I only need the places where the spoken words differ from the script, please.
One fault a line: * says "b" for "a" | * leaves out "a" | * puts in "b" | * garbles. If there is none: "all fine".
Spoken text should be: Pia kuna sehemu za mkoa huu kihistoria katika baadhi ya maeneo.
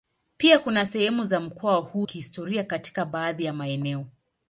all fine